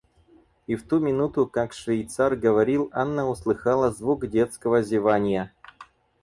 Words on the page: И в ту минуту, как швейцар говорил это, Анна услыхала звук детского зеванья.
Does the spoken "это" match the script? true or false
false